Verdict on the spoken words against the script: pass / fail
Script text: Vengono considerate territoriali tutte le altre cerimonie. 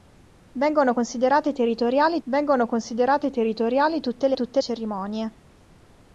fail